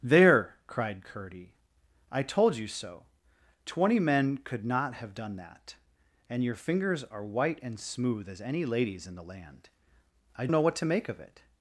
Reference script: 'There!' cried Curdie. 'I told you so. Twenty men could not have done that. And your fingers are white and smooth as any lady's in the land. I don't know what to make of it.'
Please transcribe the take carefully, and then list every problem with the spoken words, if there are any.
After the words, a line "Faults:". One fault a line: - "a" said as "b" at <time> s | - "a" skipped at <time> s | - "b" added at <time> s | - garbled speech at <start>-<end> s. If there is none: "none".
'There!' cried Curdie. 'I told you so. Twenty men could not have done that. And your fingers are white and smooth as any lady's in the land. I know what to make of it.'
Faults:
- "don't" skipped at 10.5 s